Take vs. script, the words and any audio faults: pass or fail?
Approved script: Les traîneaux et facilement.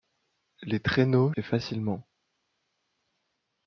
pass